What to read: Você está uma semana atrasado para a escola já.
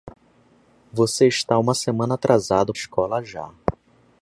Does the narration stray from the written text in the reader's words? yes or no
yes